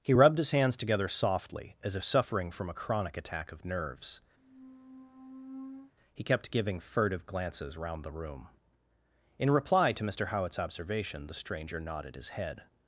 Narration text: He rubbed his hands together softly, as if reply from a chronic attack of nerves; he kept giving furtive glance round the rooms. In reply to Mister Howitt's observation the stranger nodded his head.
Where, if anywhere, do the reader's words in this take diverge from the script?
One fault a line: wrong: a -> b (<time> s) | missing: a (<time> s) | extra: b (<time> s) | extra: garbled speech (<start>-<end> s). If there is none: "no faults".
wrong: reply -> suffering (2.0 s)
wrong: glance -> glances (7.3 s)
wrong: rooms -> room (8.1 s)